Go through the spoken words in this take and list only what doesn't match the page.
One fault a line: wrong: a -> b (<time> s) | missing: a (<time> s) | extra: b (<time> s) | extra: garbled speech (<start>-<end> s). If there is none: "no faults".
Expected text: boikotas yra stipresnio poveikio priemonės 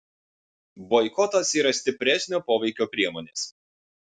no faults